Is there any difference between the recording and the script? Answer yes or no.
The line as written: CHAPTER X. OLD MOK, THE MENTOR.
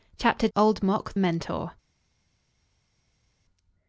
yes